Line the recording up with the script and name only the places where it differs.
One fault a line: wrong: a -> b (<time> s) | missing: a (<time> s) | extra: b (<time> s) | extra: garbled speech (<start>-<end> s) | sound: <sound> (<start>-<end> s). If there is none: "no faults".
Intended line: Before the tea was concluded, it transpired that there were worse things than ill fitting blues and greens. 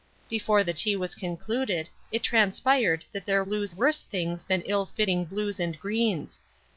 wrong: were -> blues (3.4 s)